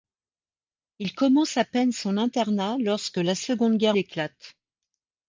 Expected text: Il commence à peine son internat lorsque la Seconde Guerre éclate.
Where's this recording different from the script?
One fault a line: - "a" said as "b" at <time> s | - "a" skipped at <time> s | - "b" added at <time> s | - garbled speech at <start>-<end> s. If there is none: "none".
none